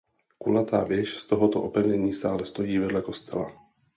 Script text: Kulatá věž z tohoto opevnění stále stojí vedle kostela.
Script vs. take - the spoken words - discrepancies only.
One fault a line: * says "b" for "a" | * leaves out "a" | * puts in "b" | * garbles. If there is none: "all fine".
all fine